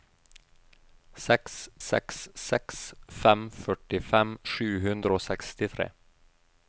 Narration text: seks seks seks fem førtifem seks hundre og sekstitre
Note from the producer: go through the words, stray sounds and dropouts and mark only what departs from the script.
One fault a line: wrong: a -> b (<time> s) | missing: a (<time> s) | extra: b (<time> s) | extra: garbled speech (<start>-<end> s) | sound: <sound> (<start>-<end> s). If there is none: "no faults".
wrong: seks -> sju (4.5 s)